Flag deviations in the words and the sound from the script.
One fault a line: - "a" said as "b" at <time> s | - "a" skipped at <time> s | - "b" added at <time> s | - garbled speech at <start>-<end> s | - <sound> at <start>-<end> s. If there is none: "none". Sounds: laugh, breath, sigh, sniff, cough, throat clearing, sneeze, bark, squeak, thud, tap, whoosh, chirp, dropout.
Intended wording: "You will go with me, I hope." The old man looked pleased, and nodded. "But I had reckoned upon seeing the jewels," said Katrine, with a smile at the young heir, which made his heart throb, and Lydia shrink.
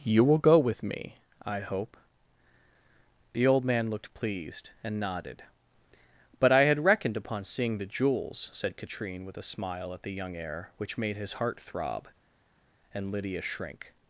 none